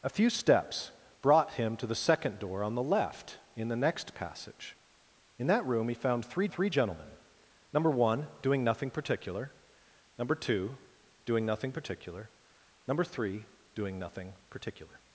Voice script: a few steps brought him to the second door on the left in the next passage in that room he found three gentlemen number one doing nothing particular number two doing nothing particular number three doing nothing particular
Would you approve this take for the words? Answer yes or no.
no